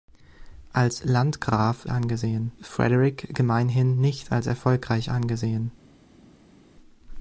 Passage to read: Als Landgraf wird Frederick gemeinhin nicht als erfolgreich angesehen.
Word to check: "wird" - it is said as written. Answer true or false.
false